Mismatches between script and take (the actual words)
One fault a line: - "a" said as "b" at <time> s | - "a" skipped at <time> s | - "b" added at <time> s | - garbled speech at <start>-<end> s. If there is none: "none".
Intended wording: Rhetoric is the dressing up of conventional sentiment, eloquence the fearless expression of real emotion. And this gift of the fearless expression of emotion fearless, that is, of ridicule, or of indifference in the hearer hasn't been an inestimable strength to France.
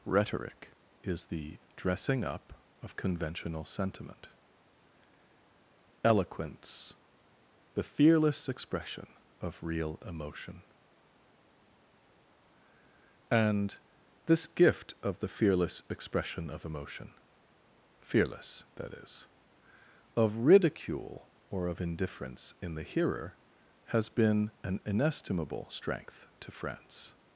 - "hasn't" said as "has" at 23.9 s